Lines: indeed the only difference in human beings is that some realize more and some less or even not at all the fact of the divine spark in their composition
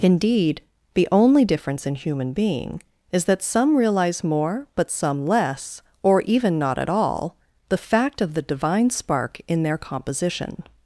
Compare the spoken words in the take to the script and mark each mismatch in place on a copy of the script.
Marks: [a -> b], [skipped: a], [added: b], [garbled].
indeed the only difference in human [beings -> being] is that some realize more [and -> but] some less or even not at all the fact of the divine spark in their composition